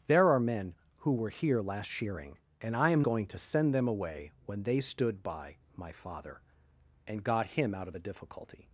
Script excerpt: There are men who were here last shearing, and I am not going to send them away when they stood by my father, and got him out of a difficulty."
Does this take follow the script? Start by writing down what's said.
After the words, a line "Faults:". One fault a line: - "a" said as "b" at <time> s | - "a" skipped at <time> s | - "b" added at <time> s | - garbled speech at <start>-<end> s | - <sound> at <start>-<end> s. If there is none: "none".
There are men who were here last shearing, and I am going to send them away when they stood by my father, and got him out of a difficulty."
Faults:
- "not" skipped at 3.0 s